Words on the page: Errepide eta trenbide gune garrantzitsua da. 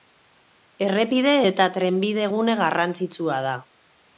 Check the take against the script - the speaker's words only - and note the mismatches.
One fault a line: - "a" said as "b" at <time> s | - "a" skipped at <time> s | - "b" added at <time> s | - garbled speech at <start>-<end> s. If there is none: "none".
none